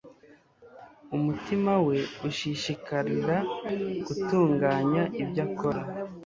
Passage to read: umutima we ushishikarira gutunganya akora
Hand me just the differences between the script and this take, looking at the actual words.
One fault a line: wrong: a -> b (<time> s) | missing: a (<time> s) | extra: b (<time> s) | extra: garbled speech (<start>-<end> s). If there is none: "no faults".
extra: ibyo (5.2 s)